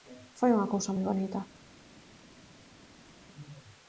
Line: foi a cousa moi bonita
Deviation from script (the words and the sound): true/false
true